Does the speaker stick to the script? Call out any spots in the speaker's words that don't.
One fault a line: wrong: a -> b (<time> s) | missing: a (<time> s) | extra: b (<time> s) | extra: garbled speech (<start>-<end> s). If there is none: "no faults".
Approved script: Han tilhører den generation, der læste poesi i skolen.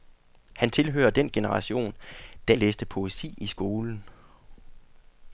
no faults